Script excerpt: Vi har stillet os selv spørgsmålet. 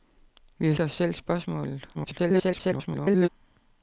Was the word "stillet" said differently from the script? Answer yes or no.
yes